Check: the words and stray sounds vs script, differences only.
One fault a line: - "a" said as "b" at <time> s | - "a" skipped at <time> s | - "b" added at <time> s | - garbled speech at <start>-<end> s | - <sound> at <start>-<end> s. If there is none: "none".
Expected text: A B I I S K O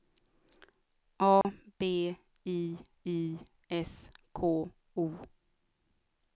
- dropout at 1.4-1.4 s